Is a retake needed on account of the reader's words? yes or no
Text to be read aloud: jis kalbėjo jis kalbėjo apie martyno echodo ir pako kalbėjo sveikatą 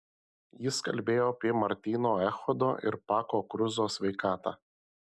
yes